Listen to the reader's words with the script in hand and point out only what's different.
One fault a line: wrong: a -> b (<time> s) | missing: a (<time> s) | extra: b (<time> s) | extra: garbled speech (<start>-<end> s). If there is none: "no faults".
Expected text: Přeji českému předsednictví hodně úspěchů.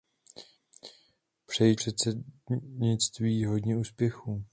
missing: českému (1.8 s)